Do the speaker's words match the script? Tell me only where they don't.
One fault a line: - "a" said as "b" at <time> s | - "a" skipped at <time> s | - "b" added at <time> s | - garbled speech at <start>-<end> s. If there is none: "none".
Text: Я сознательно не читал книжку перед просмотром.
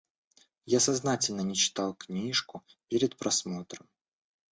none